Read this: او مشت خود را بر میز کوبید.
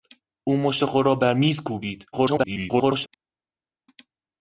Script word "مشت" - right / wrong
right